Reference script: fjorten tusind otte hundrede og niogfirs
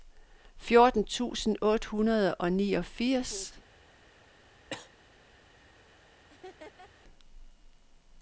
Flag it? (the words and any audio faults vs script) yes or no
yes